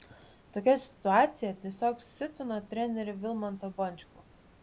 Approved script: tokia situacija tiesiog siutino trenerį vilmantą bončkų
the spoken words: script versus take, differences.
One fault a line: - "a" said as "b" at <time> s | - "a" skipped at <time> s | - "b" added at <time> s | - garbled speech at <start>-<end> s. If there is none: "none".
none